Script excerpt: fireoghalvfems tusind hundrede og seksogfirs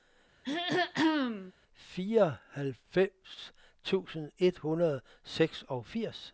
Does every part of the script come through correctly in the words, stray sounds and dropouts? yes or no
no